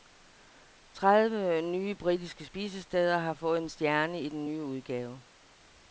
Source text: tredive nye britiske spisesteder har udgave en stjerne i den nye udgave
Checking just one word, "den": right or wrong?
right